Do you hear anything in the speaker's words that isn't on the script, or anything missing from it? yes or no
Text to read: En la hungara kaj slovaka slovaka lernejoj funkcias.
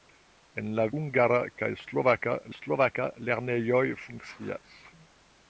no